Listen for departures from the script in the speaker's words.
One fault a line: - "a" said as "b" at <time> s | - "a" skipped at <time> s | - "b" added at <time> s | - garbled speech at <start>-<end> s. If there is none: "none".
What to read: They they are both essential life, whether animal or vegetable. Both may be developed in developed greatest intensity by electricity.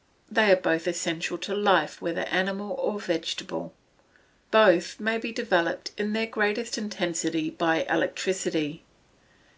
- "they" skipped at 0.5 s
- "to" added at 1.4 s
- "developed" said as "their" at 6.1 s